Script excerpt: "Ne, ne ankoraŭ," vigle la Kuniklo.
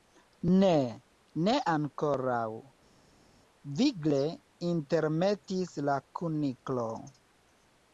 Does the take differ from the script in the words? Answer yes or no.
yes